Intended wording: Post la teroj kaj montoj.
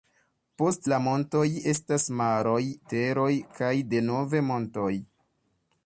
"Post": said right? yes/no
yes